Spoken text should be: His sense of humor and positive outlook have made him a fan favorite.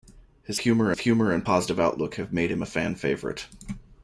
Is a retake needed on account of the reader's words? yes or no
yes